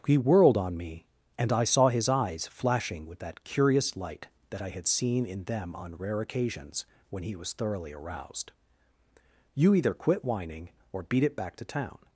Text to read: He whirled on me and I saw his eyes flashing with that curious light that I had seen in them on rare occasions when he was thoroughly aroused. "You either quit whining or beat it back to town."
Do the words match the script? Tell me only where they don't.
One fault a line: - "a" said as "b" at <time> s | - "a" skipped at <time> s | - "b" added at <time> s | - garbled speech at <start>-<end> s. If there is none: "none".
none